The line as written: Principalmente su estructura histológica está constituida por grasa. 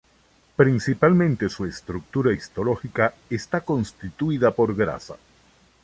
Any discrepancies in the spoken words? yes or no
no